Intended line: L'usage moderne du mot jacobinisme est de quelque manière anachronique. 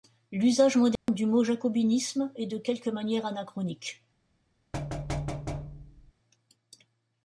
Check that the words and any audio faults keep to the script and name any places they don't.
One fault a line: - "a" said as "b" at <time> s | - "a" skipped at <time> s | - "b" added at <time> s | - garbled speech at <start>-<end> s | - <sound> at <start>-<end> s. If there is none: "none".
- dropout at 1.0-1.1 s
- thud at 4.7-6.1 s